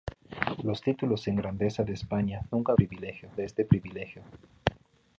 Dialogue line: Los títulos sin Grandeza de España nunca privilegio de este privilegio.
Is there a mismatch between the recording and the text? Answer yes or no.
no